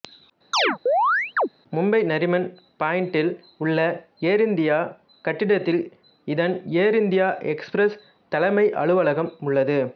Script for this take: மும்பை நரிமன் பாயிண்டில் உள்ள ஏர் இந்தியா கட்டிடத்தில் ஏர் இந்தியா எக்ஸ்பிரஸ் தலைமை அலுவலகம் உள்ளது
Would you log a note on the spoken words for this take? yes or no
yes